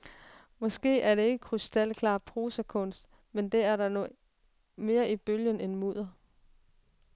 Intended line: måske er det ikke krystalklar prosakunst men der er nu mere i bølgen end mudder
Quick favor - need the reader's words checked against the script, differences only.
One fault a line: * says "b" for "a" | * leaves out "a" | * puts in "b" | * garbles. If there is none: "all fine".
all fine